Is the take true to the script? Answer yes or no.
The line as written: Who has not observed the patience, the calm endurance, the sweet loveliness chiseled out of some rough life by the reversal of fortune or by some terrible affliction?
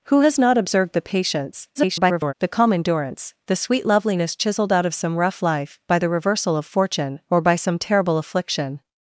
no